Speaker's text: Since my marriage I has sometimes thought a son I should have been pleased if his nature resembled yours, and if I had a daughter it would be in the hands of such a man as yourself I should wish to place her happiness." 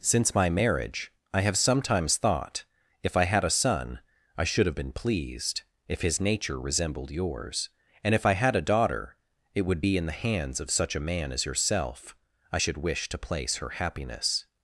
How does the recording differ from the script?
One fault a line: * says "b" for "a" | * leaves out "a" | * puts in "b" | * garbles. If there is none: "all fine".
* says "have" for "has"
* puts in "if I had"